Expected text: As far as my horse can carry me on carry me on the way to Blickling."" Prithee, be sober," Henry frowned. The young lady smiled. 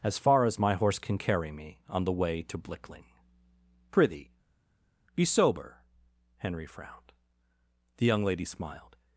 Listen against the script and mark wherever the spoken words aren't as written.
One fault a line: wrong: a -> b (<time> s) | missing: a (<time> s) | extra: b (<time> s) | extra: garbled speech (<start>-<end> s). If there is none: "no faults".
missing: carry me on (2.0 s)